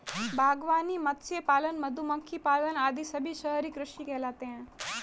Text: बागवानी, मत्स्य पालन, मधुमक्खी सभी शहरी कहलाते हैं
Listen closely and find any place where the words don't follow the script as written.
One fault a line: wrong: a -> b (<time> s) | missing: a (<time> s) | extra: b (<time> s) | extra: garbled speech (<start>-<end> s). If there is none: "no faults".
extra: पालन आदि (2.4 s)
extra: कृषि (3.7 s)